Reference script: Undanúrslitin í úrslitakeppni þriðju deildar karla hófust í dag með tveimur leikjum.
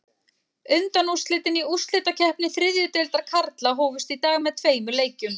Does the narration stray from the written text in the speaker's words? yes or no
no